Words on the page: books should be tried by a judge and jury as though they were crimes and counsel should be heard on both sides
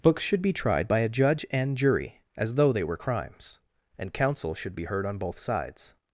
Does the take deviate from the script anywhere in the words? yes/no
no